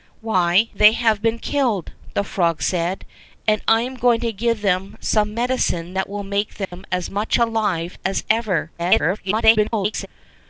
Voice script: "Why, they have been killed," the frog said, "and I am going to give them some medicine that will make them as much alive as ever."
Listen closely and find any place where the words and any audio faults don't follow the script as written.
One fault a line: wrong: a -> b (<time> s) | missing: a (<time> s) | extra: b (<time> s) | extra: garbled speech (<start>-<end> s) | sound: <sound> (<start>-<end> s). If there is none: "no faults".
sound: dropout (6.6-6.7 s)
extra: garbled speech (8.8-10.1 s)